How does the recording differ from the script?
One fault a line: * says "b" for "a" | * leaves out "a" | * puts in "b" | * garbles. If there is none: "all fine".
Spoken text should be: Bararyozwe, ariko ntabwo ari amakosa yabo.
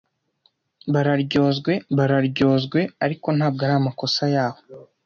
* puts in "bararyozwe"